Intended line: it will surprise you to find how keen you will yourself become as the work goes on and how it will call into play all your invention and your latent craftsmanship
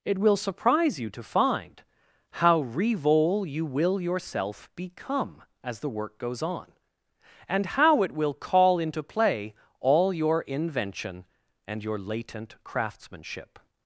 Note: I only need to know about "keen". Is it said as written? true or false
false